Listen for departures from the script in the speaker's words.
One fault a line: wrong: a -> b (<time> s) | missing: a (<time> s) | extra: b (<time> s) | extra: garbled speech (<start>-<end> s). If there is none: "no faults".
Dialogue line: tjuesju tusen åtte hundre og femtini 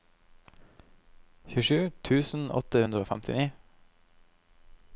no faults